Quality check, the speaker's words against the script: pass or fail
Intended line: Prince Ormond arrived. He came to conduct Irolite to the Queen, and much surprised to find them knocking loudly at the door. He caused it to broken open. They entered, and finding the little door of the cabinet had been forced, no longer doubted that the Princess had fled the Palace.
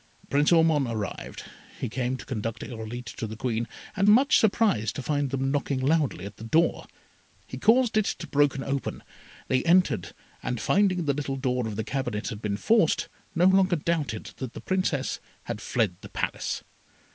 pass